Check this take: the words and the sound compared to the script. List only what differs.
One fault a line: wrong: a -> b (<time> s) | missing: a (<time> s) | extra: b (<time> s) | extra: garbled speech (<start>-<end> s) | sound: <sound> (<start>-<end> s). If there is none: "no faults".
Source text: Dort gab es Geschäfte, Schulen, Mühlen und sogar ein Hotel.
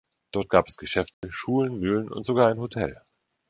sound: dropout (1.1-1.2 s)